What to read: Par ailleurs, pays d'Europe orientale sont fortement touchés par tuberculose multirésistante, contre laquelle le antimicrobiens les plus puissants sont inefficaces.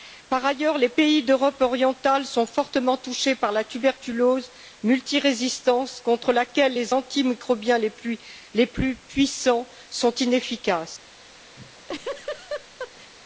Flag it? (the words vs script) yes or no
yes